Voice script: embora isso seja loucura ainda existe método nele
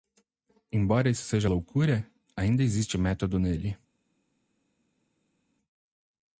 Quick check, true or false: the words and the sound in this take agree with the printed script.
true